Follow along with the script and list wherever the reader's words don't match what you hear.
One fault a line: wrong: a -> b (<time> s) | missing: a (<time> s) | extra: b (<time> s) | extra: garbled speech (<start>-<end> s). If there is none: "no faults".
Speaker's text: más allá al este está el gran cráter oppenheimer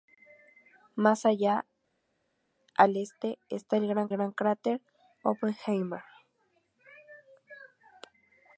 extra: gran (4.1 s)